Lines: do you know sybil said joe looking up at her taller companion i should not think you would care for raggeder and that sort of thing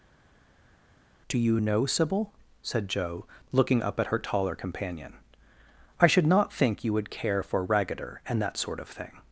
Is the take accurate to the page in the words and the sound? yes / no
yes